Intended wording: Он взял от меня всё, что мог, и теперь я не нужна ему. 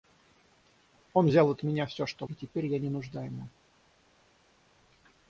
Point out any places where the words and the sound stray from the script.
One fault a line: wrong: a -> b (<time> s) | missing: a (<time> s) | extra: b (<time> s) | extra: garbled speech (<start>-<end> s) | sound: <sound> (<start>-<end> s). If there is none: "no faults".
missing: мог (2.3 s)